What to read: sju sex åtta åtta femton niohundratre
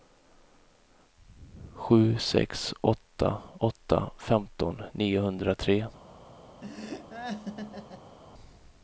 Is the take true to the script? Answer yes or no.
yes